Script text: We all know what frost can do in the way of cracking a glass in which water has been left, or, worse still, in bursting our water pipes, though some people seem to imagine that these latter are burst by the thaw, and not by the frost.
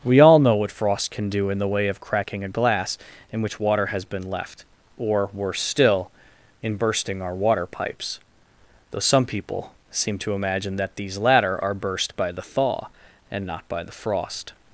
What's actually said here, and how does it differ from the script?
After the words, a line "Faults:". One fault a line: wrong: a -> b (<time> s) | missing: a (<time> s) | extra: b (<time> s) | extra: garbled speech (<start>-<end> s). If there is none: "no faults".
We all know what frost can do in the way of cracking a glass in which water has been left, or, worse still, in bursting our water pipes, though some people seem to imagine that these latter are burst by the thaw, and not by the frost.
Faults:
no faults